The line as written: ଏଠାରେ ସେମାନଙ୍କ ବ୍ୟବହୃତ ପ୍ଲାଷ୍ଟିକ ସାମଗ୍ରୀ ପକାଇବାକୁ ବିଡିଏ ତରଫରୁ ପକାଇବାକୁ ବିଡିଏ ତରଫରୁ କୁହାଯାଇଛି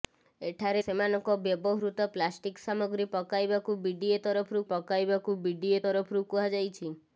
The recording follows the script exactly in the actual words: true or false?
true